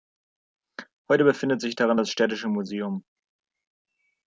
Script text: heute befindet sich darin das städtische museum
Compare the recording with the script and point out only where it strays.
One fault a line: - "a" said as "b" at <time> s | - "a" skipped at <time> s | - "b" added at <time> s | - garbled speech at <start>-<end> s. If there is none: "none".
none